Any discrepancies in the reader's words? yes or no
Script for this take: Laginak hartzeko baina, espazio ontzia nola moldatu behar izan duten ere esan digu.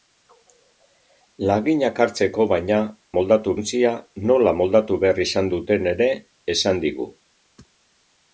yes